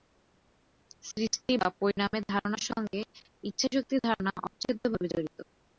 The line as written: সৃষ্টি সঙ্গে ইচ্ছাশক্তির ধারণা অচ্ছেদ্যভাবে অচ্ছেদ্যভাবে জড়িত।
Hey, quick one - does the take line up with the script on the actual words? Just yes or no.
no